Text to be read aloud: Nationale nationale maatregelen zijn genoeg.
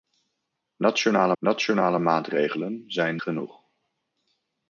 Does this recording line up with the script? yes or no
yes